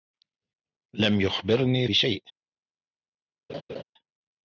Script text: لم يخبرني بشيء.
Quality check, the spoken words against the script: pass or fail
pass